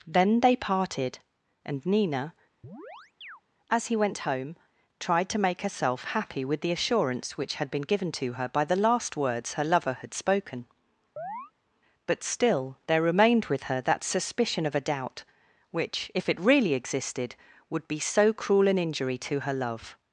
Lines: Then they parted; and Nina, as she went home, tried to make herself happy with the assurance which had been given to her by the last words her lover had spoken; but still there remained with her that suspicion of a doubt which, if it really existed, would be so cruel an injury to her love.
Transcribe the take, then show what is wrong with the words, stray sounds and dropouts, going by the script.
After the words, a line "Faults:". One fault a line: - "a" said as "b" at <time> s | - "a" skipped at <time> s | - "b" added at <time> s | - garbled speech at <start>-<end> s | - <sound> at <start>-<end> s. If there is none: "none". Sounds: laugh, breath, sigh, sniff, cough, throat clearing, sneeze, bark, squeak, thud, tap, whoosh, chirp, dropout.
Then they parted; and Nina, as he went home, tried to make herself happy with the assurance which had been given to her by the last words her lover had spoken; but still there remained with her that suspicion of a doubt which, if it really existed, would be so cruel an injury to her love.
Faults:
- chirp at 2.6-3.4 s
- "she" said as "he" at 3.9 s
- chirp at 11.2-11.5 s